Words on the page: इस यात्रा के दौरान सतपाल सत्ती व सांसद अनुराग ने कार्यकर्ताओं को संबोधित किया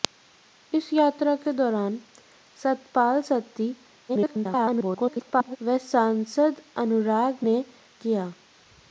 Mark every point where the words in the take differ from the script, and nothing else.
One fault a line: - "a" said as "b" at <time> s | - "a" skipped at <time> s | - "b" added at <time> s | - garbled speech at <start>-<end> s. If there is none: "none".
- garbled speech at 4.1-5.6 s
- "कार्यकर्ताओं को संबोधित" skipped at 7.6 s